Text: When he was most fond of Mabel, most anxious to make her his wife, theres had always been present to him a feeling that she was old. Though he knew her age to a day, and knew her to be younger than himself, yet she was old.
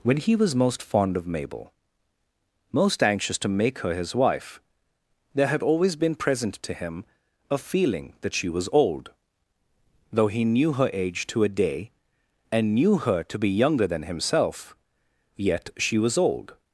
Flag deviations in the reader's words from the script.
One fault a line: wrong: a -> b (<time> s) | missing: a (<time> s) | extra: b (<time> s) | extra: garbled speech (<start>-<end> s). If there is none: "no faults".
wrong: theres -> there (5.3 s)